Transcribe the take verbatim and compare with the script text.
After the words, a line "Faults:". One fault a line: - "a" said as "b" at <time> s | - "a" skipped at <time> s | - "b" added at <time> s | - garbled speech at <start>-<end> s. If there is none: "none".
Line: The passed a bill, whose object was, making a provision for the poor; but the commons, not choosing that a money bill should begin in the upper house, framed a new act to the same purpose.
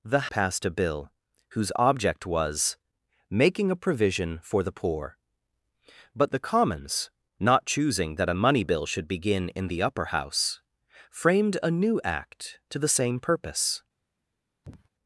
The passed a bill, whose object was, making a provision for the poor; but the commons, not choosing that a money bill should begin in the upper house, framed a new act to the same purpose.
Faults:
none